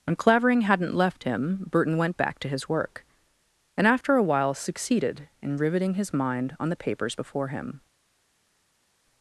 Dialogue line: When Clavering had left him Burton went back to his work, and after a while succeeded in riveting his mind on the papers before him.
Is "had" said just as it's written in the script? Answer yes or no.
no